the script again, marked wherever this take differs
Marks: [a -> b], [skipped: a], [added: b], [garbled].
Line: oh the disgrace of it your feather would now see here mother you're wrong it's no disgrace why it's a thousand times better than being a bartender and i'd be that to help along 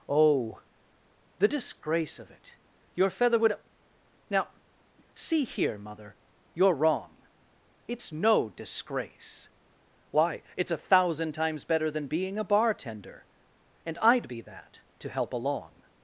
oh the disgrace of it your feather would now see here mother you're wrong it's no disgrace why it's a thousand times better than being a bartender and i'd be that to help along